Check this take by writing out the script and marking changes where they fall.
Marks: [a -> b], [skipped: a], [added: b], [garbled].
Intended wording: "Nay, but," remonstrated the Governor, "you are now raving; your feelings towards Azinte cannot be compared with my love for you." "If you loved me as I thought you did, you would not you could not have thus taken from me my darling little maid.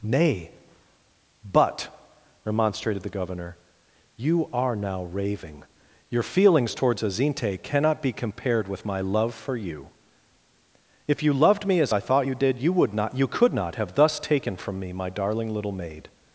"Nay, but," remonstrated the Governor, "you are now raving; your feelings towards Azinte cannot be compared with my love for you." "If you loved me as I thought you did, you would not you could not have thus taken from me my darling little maid.